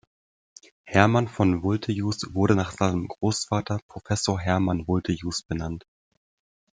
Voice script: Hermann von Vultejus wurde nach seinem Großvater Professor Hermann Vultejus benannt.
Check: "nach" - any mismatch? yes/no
no